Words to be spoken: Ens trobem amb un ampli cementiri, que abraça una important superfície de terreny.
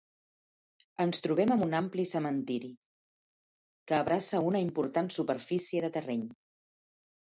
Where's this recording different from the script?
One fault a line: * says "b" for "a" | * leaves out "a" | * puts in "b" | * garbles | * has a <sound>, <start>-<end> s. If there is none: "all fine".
all fine